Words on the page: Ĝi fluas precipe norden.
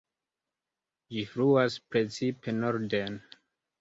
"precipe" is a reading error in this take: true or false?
false